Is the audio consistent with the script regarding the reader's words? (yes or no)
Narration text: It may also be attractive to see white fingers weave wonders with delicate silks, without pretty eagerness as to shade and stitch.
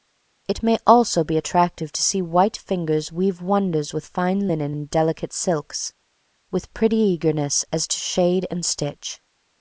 no